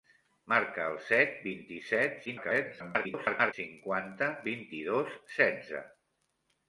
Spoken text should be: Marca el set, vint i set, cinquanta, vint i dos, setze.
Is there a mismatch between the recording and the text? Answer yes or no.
yes